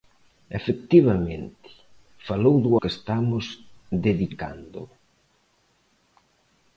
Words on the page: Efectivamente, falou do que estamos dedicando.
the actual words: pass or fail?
pass